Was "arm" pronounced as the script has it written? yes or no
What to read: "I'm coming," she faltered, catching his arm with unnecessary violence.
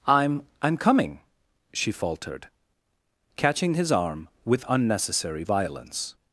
yes